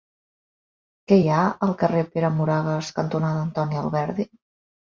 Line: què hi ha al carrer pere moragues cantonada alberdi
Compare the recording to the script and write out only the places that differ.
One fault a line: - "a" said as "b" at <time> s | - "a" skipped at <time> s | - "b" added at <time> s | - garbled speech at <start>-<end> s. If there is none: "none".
- "antoni" added at 3.5 s